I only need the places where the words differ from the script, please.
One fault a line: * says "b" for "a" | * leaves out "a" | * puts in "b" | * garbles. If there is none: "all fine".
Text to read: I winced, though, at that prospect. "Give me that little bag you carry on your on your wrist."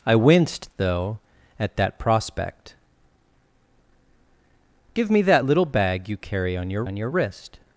all fine